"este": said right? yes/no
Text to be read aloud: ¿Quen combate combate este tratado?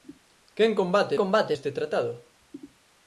yes